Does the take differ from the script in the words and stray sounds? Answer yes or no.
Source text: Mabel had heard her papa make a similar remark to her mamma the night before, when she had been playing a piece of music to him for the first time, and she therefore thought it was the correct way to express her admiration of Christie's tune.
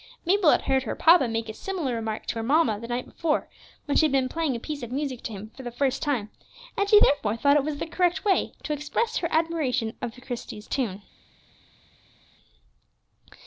no